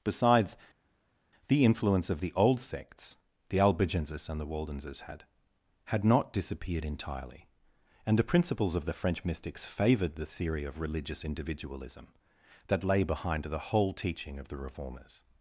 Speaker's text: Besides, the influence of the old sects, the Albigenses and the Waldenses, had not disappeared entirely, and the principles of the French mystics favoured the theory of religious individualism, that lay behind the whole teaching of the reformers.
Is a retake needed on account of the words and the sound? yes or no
yes